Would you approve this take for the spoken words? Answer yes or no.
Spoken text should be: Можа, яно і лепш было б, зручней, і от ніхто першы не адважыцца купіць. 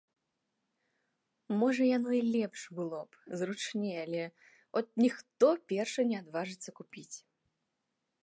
no